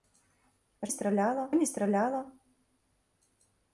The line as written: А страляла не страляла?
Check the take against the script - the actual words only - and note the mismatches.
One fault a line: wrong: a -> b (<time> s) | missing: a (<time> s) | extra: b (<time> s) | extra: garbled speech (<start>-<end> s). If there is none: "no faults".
no faults